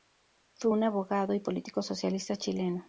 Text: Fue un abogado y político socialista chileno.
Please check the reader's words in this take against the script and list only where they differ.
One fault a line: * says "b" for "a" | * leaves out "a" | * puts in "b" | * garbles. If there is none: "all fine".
all fine